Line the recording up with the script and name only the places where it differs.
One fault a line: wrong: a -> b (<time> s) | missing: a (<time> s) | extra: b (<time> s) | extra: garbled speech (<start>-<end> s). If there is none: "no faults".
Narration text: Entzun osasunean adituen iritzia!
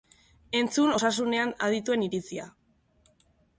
no faults